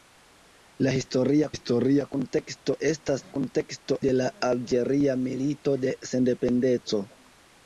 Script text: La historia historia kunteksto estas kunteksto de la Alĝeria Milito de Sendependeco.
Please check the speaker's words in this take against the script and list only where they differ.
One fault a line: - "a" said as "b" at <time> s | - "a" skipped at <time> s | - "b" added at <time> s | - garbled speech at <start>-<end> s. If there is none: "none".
none